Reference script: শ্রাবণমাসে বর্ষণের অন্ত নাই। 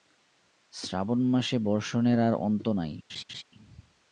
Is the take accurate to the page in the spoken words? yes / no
no